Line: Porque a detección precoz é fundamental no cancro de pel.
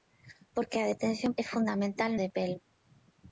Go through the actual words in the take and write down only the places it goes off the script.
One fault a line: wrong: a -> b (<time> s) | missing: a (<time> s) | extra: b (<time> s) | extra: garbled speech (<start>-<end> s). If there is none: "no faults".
missing: precoz (1.3 s)
missing: no cancro (2.1 s)